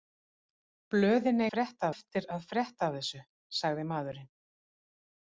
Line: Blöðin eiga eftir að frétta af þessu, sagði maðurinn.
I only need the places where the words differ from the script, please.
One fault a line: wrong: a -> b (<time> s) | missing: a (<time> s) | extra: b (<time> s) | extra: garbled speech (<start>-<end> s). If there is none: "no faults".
wrong: eiga -> frétta (1.5 s)